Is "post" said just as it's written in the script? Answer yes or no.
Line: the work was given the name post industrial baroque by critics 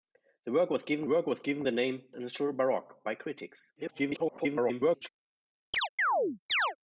no